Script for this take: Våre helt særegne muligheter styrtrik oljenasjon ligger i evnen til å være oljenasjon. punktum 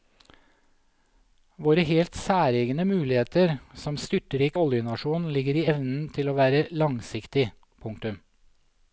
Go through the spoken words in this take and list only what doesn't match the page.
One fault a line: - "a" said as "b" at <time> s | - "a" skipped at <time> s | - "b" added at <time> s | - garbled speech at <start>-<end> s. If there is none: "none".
- "som" added at 3.8 s
- "oljenasjon" said as "langsiktig" at 6.8 s